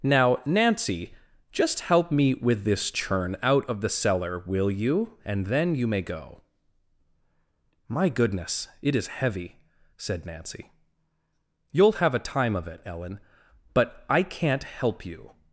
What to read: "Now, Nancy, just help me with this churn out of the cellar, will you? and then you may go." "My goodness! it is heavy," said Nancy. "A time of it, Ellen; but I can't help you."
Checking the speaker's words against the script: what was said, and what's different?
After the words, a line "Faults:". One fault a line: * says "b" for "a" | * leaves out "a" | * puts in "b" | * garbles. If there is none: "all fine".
"Now, Nancy, just help me with this churn out of the cellar, will you? and then you may go." "My goodness! it is heavy," said Nancy. "You'll have a time of it, Ellen; but I can't help you."
Faults:
* puts in "You'll have"